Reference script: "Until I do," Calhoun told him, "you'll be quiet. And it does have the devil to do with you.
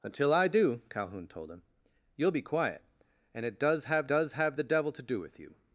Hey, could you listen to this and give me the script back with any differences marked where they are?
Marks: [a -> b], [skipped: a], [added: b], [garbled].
"Until I do," Calhoun told him, "you'll be quiet. And it does have [added: does have] the devil to do with you.